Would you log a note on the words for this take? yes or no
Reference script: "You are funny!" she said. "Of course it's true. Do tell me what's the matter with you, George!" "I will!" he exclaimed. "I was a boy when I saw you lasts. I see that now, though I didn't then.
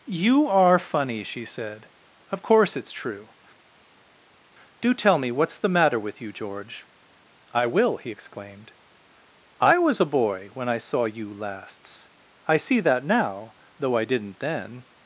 no